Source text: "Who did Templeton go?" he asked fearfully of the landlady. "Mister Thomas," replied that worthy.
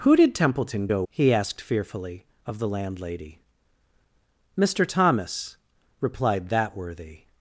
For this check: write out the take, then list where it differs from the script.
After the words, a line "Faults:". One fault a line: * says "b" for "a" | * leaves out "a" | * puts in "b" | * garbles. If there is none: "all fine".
"Who did Templeton go?" he asked fearfully of the landlady. "Mister Thomas," replied that worthy.
Faults:
all fine